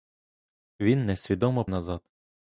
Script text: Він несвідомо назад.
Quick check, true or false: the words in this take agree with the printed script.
true